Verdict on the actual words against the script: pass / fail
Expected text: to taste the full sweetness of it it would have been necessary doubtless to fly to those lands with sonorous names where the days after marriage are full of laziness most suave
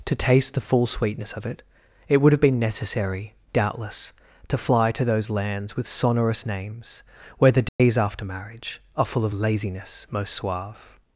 pass